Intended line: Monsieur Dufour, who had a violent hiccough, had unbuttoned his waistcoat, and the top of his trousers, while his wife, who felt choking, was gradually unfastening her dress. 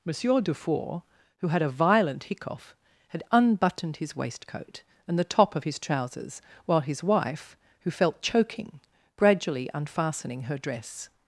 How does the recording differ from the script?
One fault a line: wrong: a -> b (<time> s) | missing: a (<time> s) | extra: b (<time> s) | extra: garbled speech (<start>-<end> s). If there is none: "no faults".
missing: was (8.8 s)